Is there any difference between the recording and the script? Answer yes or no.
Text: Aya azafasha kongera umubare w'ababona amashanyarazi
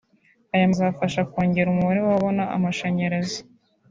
no